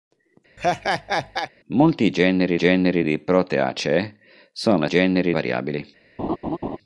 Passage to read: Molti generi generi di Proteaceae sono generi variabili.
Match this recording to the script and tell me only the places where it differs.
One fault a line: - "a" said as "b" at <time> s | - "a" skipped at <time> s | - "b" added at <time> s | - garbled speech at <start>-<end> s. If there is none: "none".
none